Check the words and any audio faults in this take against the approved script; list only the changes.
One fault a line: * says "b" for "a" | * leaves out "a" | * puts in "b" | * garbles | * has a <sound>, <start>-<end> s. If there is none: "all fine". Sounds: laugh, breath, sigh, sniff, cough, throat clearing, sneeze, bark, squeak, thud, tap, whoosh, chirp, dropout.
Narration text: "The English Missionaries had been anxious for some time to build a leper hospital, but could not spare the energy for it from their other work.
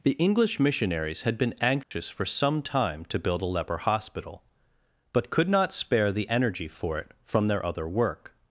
* has a dropout, 1.8-1.9 s